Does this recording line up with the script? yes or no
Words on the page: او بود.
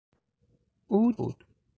yes